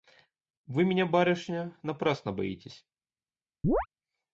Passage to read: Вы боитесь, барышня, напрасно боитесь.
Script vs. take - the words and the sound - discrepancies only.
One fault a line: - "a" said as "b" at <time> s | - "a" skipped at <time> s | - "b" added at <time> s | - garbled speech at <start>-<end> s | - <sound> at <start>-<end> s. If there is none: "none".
- "боитесь" said as "меня" at 0.8 s
- chirp at 3.6-3.9 s